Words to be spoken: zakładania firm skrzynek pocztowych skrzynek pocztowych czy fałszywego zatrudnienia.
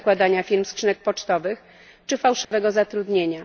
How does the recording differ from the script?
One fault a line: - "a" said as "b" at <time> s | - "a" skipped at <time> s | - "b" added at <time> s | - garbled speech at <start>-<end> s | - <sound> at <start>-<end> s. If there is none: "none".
- "skrzynek pocztowych" skipped at 1.6 s
- dropout at 2.4-2.5 s